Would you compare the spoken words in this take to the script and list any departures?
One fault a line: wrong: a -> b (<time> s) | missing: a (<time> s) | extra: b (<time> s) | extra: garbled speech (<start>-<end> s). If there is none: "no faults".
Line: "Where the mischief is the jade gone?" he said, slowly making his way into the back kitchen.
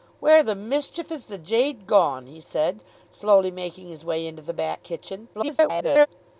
extra: garbled speech (5.3-6.1 s)